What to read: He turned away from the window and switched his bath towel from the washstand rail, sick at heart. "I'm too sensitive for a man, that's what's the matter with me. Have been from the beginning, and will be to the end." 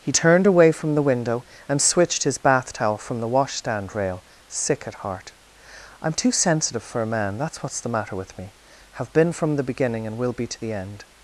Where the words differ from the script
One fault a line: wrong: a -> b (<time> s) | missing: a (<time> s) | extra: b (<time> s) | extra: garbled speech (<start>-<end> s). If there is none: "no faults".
no faults